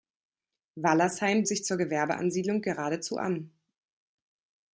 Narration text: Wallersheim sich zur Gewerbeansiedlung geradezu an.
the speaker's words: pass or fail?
pass